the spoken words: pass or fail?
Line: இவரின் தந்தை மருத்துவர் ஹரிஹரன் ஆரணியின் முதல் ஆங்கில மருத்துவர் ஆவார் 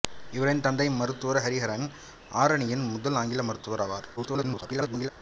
fail